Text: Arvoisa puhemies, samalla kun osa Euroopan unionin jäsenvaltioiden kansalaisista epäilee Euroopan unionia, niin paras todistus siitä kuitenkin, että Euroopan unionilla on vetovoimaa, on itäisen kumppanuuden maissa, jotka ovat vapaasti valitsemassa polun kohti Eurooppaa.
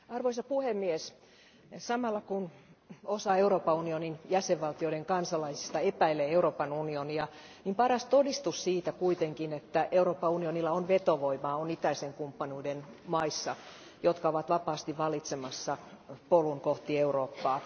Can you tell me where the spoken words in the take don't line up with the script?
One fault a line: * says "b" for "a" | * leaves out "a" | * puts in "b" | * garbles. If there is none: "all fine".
all fine